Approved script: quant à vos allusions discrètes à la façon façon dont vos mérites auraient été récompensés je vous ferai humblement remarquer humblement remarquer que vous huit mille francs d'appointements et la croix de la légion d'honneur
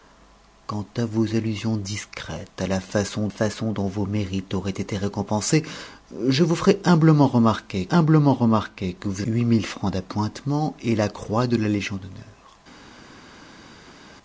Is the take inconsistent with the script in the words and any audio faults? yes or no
no